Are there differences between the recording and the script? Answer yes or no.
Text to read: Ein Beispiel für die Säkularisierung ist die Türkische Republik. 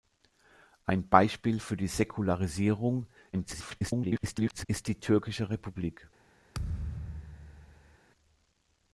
yes